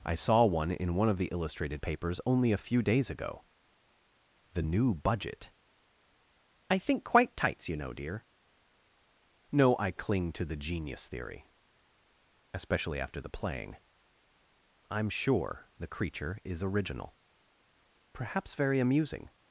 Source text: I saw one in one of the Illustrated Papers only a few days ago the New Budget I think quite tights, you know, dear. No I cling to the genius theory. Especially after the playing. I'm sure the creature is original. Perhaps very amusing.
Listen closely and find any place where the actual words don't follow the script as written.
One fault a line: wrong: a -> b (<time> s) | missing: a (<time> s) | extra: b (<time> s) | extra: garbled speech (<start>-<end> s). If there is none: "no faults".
no faults